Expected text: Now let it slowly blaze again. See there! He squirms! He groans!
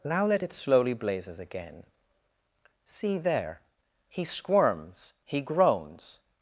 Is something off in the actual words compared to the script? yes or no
yes